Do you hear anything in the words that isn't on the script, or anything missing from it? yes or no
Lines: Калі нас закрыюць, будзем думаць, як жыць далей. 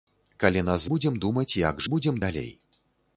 yes